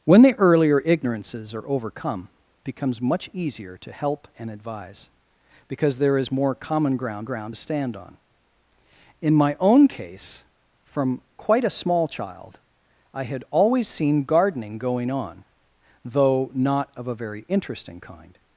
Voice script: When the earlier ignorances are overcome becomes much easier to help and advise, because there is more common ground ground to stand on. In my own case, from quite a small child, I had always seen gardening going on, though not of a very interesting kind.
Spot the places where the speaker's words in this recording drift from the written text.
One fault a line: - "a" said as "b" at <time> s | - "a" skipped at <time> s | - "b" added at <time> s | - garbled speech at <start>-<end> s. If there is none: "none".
none